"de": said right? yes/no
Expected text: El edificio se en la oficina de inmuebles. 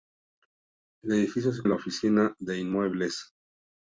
yes